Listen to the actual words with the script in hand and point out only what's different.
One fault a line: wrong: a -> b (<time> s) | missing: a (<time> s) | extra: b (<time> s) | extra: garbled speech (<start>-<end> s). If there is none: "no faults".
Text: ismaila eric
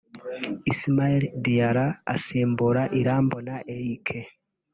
extra: diarra asimbura irambona (1.4 s)